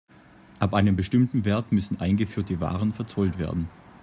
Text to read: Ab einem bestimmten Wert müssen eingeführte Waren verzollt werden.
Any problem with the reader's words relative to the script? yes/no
no